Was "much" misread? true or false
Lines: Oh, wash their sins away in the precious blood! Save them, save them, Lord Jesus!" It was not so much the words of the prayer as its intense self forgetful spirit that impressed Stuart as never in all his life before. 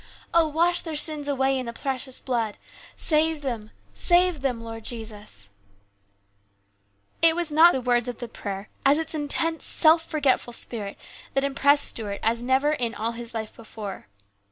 true